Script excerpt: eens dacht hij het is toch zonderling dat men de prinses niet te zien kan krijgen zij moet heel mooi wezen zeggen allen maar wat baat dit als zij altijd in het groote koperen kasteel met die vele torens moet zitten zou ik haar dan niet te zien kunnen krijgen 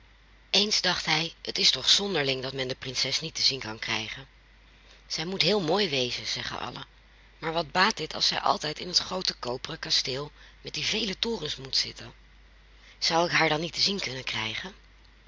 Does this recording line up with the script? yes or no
yes